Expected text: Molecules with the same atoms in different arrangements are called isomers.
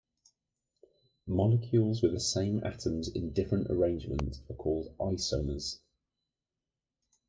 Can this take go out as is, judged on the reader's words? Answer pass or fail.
pass